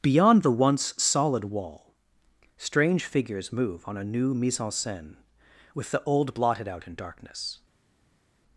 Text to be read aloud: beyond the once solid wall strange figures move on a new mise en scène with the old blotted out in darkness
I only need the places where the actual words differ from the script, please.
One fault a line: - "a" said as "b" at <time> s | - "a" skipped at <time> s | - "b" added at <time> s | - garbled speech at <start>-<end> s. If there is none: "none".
none